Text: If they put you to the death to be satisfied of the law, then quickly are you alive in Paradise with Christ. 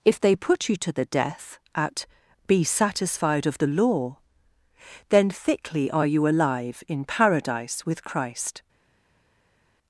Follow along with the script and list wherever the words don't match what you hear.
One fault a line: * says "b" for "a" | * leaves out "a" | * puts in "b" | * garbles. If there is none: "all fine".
* says "at" for "to"
* says "thickly" for "quickly"